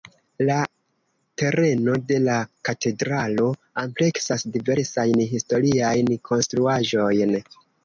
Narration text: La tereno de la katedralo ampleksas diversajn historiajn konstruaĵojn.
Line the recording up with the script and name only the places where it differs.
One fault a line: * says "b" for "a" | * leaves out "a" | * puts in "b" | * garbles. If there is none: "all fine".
all fine